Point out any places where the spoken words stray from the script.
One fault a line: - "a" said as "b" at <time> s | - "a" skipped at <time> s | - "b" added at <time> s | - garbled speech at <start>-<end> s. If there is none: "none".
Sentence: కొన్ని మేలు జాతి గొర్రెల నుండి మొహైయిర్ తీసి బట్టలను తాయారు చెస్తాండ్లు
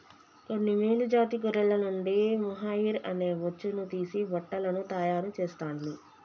- "అనే బొచ్చును" added at 3.0 s